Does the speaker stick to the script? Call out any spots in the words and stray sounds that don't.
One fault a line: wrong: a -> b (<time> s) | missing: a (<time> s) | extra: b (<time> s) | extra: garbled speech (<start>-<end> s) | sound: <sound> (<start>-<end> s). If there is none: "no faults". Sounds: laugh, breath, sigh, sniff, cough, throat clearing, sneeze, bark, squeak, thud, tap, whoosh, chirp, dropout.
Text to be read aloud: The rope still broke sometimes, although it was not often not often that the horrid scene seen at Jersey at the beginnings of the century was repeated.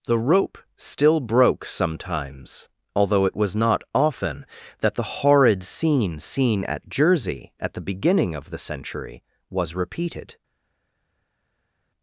missing: not often (4.5 s)
wrong: beginnings -> beginning (7.9 s)